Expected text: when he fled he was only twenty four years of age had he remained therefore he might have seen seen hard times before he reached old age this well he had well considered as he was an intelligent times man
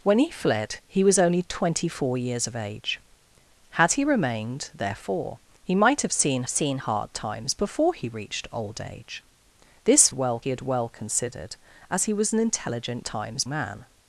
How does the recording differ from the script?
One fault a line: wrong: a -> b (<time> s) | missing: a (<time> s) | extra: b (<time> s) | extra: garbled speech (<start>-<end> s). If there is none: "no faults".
no faults